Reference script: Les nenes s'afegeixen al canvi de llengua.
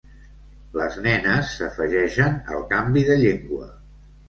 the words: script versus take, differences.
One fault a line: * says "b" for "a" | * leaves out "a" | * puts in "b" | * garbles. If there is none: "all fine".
all fine